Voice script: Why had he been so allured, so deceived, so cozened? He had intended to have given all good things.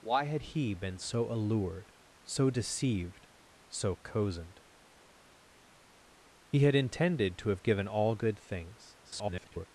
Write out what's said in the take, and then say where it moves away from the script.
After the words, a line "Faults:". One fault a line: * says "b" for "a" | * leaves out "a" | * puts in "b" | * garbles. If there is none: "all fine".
Why had he been so allured, so deceived, so cozened? He had intended to have given all good things. [garbled]
Faults:
* garbles